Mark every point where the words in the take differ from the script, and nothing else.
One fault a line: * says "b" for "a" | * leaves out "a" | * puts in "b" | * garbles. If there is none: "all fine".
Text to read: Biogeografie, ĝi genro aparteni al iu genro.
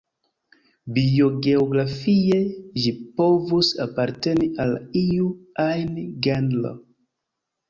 * says "povus" for "genro"
* puts in "ajn"